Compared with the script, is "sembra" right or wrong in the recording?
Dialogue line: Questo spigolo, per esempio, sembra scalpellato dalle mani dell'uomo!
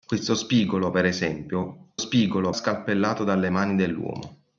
wrong